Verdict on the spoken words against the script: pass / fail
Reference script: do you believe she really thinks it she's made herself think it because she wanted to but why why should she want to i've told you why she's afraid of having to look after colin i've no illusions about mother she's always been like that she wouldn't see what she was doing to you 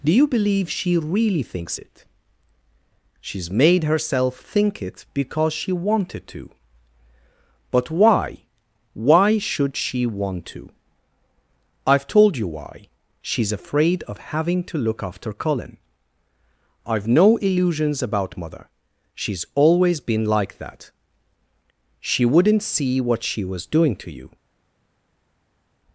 pass